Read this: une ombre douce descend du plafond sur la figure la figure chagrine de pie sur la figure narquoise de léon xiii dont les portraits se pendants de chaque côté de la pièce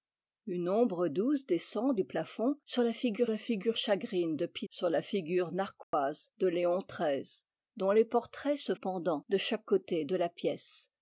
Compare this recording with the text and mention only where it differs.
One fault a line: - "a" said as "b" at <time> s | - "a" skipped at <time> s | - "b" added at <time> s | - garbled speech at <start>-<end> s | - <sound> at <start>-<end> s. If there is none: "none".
- dropout at 5.8-5.9 s